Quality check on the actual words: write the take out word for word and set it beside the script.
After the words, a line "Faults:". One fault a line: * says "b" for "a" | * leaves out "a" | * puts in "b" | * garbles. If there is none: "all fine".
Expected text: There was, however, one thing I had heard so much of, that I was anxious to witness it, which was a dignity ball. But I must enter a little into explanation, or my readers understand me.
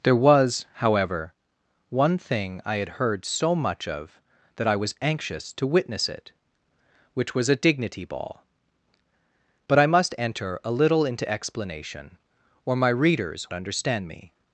There was, however, one thing I had heard so much of, that I was anxious to witness it, which was a dignity ball. But I must enter a little into explanation, or my readers understand me.
Faults:
all fine